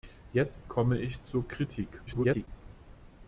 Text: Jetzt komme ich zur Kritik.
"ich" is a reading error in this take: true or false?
false